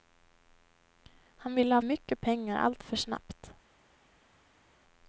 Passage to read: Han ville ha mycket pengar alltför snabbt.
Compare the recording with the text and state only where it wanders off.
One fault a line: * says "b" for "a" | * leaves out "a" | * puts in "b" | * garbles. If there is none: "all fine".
all fine